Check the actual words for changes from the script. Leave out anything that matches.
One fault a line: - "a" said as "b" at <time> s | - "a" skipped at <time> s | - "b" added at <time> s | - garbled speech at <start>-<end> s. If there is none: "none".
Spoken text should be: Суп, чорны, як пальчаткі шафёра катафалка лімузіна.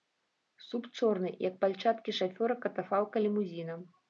none